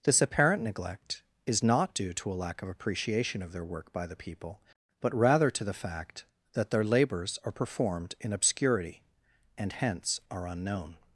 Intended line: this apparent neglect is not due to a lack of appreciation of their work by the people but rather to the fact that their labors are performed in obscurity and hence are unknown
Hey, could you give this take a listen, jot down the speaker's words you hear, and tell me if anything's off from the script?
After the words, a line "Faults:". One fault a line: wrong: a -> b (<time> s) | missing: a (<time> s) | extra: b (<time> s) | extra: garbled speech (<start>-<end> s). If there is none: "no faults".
this apparent neglect is not due to a lack of appreciation of their work by the people but rather to the fact that their labors are performed in obscurity and hence are unknown
Faults:
no faults